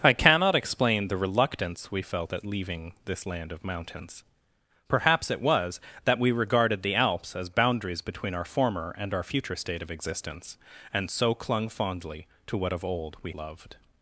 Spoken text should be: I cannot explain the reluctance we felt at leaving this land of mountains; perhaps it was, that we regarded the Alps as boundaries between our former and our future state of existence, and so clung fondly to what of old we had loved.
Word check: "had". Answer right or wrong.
wrong